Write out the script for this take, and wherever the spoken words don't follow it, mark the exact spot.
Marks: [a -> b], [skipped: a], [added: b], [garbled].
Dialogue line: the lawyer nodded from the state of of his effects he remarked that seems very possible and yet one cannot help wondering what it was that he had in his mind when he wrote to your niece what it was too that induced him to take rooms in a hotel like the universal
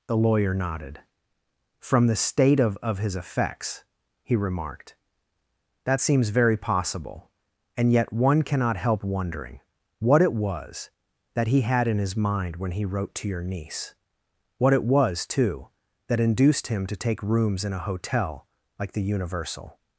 the lawyer nodded from the state of of his effects he remarked that seems very possible and yet one cannot help wondering what it was that he had in his mind when he wrote to your niece what it was too that induced him to take rooms in a hotel like the universal